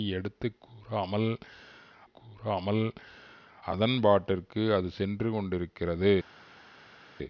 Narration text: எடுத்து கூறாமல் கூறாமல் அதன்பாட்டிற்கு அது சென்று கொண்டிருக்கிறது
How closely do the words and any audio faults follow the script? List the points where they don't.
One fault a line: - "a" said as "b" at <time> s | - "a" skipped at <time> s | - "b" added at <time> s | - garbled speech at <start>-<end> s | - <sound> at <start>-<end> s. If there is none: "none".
none